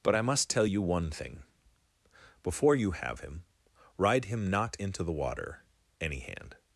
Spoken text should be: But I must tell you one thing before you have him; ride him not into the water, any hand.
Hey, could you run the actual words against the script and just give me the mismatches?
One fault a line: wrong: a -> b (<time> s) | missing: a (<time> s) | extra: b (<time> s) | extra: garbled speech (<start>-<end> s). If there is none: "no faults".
no faults